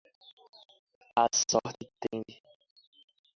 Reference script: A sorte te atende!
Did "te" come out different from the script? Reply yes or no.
yes